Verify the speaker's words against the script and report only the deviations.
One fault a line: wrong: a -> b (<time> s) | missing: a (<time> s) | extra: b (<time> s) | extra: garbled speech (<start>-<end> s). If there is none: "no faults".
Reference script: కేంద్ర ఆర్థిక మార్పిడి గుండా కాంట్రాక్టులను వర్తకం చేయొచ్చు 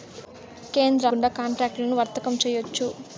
missing: ఆర్థిక మార్పిడి (1.1 s)